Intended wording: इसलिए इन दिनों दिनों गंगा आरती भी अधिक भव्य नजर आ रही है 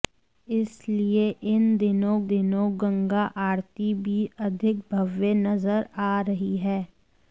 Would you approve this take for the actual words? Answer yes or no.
yes